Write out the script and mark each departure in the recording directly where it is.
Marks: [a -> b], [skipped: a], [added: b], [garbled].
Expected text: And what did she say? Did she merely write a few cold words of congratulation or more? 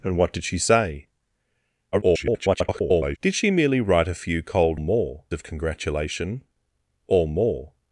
And what did she say? [garbled] Did she merely write a few cold [words -> more] of congratulation or more?